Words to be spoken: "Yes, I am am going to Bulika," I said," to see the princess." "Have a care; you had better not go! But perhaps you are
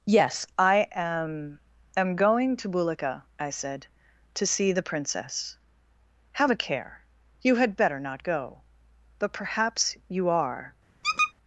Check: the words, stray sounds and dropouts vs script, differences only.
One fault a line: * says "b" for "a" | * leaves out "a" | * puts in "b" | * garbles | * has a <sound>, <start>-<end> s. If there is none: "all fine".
* has a squeak, 11.0-11.3 s